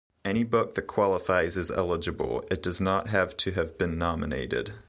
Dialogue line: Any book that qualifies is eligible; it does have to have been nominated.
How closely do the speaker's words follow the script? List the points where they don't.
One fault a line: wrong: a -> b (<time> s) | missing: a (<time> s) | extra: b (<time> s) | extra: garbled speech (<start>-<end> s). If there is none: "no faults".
extra: not (2.8 s)